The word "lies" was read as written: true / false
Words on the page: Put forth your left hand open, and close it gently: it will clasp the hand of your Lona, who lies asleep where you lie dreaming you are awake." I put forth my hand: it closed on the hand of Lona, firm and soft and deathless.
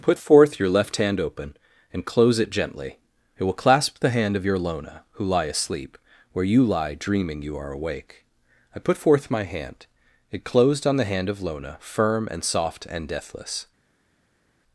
false